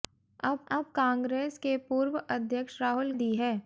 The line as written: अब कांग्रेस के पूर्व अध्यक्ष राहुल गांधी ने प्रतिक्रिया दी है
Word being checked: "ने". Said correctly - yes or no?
no